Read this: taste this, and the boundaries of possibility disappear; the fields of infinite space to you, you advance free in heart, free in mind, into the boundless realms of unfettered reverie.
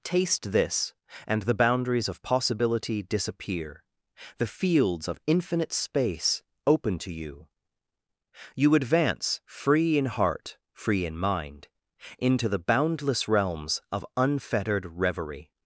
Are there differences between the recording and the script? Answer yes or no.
yes